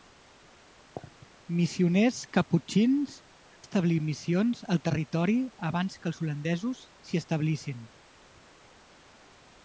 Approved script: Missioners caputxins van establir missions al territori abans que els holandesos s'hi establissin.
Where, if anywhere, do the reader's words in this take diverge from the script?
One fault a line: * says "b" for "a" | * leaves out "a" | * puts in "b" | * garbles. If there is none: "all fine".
* leaves out "van"